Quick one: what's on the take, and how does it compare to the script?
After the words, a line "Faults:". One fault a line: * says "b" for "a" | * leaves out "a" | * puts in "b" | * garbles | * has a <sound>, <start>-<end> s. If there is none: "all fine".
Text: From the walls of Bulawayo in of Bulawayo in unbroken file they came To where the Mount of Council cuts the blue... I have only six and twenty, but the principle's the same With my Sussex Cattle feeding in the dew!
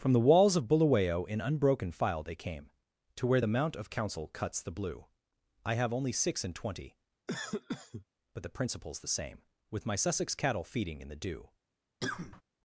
From the walls of Bulawayo in unbroken file they came To where the Mount of Council cuts the blue... I have only six and twenty, but the principle's the same With my Sussex Cattle feeding in the dew!
Faults:
* leaves out "of Bulawayo in"
* has a cough, 7.3-8.1 s
* has a cough, 12.0-12.4 s